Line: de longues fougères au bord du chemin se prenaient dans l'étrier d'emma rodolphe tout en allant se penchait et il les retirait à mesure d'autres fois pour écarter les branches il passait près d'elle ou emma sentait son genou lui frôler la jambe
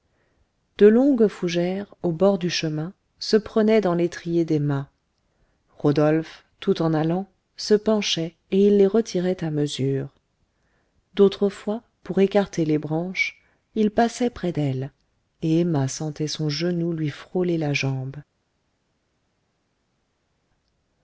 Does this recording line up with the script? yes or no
no